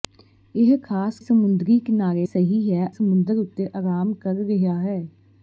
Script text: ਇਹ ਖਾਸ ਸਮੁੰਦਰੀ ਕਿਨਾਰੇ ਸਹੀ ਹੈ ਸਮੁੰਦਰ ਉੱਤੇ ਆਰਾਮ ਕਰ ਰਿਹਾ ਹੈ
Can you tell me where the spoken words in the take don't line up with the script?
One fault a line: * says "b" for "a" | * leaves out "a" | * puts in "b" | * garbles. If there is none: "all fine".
all fine